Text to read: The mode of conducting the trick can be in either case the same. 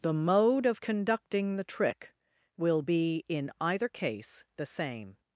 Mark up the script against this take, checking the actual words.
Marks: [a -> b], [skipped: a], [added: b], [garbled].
The mode of conducting the trick [can -> will] be in either case the same.